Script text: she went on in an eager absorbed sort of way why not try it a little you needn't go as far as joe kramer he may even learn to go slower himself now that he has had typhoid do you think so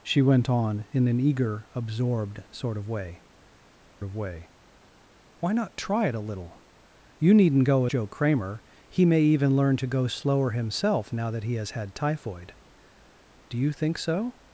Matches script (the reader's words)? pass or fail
fail